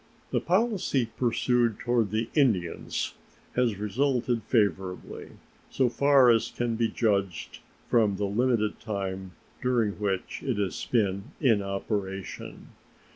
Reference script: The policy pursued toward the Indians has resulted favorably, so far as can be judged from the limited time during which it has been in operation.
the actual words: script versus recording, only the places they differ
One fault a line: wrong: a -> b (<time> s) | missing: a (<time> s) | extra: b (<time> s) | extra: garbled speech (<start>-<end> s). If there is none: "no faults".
no faults